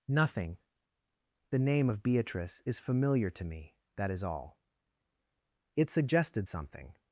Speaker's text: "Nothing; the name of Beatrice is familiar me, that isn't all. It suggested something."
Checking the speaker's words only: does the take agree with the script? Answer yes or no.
no